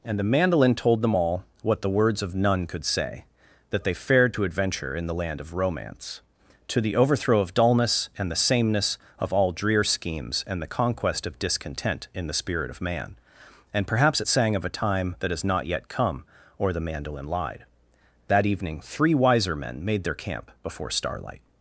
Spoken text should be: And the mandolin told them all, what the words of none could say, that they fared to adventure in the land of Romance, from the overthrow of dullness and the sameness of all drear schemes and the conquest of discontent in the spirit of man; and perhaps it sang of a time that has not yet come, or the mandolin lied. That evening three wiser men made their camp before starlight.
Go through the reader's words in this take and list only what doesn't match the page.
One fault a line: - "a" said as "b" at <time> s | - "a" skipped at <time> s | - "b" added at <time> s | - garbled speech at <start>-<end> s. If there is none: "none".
- "from" said as "to" at 6.7 s